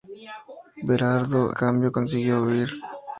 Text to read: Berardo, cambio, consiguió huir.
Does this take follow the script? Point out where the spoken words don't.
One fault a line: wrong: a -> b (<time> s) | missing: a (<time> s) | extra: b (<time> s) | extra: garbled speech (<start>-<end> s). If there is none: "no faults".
no faults